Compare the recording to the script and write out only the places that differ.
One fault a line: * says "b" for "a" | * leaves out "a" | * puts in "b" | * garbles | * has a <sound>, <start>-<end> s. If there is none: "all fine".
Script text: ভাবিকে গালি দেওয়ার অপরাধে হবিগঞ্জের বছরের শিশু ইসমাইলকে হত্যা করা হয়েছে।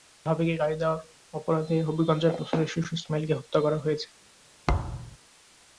* has a thud, 4.7-5.2 s